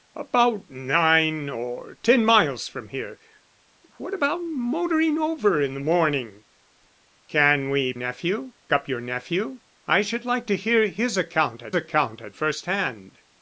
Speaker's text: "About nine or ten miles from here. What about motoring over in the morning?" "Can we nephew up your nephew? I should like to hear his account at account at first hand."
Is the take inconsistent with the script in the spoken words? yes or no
no